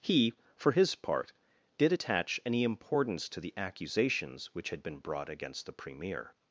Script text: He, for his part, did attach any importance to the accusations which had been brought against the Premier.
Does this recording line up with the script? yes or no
yes